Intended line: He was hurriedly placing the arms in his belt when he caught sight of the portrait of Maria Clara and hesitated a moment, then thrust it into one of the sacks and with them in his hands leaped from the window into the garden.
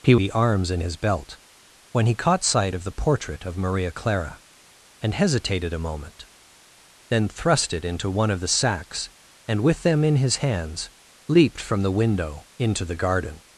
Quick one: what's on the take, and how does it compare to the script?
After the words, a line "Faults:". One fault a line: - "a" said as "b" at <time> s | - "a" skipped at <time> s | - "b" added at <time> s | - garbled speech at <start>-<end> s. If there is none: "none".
He the arms in his belt when he caught sight of the portrait of Maria Clara and hesitated a moment, then thrust it into one of the sacks and with them in his hands leaped from the window into the garden.
Faults:
- "was hurriedly placing" skipped at 0.1 s